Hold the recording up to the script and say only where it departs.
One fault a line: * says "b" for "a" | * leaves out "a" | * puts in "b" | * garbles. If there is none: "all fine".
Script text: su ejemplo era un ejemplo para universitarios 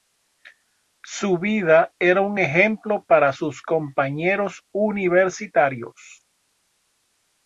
* says "vida" for "ejemplo"
* puts in "sus compañeros"